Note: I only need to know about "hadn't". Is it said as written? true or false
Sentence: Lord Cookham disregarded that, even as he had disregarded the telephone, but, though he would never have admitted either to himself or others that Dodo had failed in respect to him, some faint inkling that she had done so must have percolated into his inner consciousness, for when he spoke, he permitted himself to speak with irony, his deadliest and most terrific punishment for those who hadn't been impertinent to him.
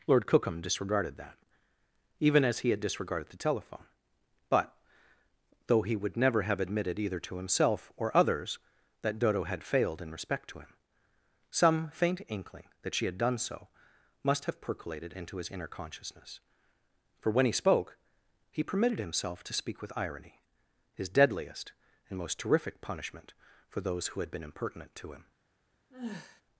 false